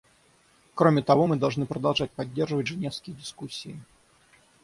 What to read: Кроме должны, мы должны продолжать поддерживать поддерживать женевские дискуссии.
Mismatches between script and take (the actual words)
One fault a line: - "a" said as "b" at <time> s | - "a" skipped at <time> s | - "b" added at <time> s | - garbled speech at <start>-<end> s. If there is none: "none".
- "должны" said as "того" at 1.0 s
- "поддерживать" skipped at 2.7 s